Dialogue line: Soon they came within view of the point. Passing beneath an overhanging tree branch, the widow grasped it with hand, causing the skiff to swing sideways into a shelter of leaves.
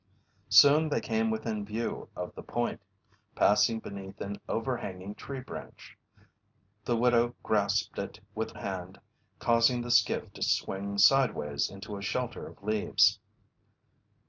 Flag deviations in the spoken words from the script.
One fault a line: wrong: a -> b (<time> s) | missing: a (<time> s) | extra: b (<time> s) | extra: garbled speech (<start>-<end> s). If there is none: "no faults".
no faults